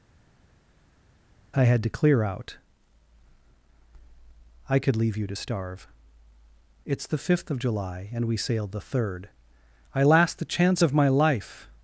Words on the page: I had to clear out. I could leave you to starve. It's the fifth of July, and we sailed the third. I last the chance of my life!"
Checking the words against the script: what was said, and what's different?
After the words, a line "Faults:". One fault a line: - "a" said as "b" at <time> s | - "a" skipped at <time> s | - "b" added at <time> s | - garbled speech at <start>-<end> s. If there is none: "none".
I had to clear out. I could leave you to starve. It's the fifth of July, and we sailed the third. I last the chance of my life!"
Faults:
none